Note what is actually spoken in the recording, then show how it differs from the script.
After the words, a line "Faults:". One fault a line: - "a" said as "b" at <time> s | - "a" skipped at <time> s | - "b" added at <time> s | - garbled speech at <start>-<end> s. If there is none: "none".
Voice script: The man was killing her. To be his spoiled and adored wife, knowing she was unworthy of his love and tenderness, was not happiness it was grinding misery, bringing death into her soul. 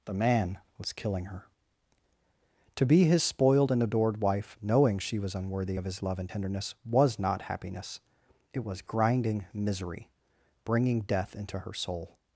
The man was killing her. To be his spoiled and adored wife, knowing she was unworthy of his love and tenderness, was not happiness it was grinding misery, bringing death into her soul.
Faults:
none